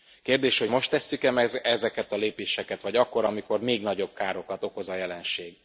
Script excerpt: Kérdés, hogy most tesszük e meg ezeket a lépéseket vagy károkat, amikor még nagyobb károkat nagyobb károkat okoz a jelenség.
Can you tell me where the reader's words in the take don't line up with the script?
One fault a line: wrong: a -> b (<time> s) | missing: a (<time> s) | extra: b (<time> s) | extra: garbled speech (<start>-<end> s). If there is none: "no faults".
wrong: károkat -> akkor (2.9 s)
missing: nagyobb károkat (4.6 s)